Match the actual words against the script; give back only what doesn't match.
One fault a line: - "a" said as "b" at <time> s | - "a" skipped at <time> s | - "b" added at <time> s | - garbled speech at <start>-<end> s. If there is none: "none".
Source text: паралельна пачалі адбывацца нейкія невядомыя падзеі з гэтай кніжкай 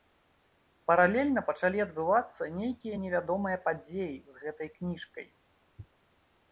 none